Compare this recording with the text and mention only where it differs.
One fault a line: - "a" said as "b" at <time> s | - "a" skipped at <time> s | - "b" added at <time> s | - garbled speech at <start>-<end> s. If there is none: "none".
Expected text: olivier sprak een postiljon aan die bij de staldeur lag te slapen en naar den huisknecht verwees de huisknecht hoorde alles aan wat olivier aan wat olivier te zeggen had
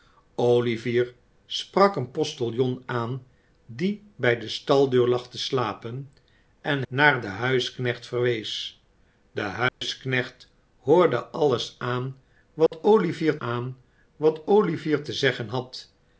none